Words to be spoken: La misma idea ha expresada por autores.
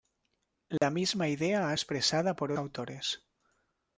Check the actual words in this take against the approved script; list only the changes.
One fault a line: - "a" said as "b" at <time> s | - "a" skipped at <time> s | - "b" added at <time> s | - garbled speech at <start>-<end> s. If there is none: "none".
none